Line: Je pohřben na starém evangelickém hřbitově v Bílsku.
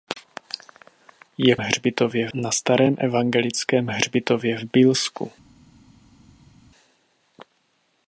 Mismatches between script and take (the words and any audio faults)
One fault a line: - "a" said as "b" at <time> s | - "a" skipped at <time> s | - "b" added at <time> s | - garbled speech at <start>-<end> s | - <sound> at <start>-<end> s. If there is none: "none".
- "pohřben" said as "hřbitově" at 1.6 s